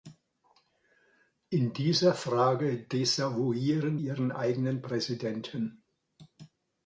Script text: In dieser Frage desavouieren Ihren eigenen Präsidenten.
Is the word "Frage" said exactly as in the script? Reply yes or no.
yes